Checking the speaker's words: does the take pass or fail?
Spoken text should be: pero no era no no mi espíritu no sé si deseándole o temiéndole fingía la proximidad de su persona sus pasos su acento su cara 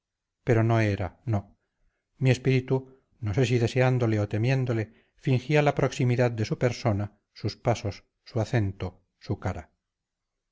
fail